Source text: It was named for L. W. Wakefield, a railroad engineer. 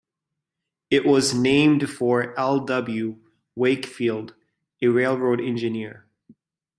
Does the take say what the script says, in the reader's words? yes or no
yes